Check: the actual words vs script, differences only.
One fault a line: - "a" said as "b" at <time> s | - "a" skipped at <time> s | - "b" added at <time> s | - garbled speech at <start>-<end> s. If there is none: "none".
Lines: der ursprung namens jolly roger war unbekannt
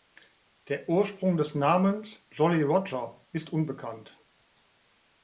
- "des" added at 1.4 s
- "war" said as "ist" at 3.3 s